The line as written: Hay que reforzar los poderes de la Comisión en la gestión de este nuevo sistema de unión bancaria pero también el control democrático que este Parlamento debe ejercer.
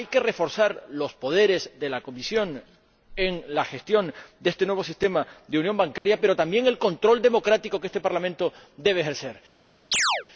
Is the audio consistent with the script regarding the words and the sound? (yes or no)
no